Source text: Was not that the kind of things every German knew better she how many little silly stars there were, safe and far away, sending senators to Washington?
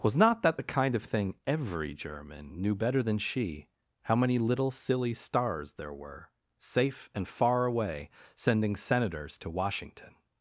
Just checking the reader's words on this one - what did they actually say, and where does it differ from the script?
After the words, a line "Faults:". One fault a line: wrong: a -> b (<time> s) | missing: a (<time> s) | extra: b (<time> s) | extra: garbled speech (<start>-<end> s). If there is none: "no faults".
Was not that the kind of thing every German knew better than she how many little silly stars there were, safe and far away, sending senators to Washington?
Faults:
wrong: things -> thing (1.0 s)
extra: than (3.0 s)